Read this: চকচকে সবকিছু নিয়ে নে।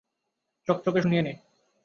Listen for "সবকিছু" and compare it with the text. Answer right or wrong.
wrong